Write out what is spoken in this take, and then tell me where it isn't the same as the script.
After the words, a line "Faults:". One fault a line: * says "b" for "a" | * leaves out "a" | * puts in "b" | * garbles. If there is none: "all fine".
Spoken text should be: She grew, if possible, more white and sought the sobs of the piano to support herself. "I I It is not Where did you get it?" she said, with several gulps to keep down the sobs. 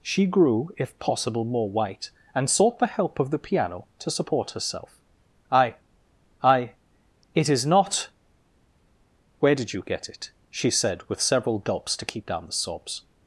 She grew, if possible, more white and sought the help of the piano to support herself. "I I It is not Where did you get it?" she said, with several gulps to keep down the sobs.
Faults:
* says "help" for "sobs"